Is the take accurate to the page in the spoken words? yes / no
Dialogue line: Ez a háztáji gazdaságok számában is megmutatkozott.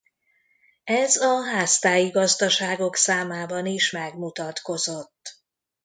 yes